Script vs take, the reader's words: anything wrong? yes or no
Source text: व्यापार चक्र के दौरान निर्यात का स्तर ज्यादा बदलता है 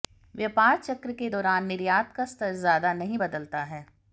yes